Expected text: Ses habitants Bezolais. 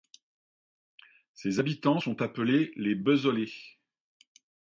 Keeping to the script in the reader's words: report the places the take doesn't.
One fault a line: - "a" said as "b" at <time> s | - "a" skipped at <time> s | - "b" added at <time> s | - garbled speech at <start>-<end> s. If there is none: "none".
- "sont appelés les" added at 1.9 s